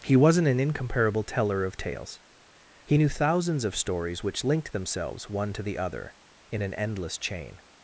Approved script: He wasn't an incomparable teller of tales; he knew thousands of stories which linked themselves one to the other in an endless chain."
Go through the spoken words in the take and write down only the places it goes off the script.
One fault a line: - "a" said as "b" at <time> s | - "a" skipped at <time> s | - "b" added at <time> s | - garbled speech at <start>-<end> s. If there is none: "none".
none